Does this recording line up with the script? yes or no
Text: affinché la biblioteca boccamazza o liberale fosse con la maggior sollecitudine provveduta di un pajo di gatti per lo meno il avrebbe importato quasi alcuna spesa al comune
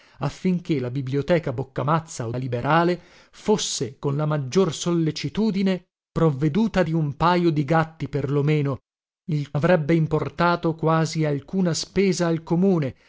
yes